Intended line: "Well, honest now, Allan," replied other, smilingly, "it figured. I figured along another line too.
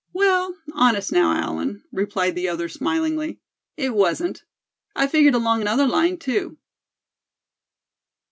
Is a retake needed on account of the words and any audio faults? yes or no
yes